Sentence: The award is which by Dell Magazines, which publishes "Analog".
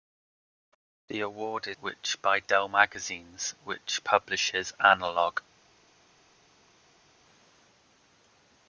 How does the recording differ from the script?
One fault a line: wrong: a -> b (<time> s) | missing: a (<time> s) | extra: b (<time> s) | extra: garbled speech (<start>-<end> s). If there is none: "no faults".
no faults